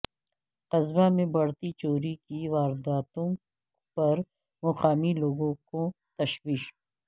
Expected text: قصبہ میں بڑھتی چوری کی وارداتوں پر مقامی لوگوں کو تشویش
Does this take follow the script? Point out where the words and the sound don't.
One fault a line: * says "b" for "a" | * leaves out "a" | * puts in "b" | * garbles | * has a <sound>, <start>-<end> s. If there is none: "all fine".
all fine